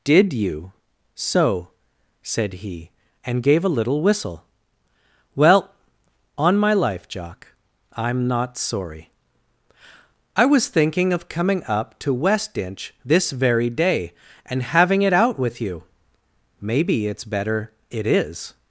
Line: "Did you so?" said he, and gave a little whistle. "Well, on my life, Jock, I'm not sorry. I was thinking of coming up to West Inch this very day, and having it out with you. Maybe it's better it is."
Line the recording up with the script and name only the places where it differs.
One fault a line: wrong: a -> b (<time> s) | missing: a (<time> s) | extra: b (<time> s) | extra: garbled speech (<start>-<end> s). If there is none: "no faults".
no faults